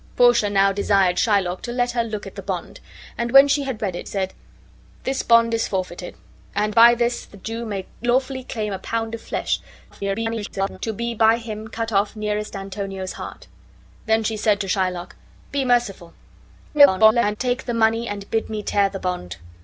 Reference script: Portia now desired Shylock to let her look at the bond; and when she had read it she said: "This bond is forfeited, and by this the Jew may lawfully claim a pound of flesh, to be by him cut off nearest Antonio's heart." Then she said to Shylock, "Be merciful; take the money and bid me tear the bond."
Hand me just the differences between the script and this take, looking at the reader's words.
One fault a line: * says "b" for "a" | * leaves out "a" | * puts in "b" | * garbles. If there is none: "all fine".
* leaves out "she"
* garbles
* garbles